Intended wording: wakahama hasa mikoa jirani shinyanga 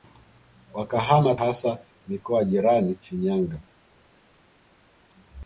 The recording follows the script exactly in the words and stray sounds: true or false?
true